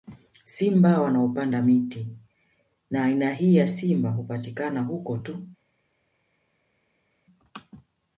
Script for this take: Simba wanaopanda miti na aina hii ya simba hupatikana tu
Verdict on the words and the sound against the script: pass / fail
fail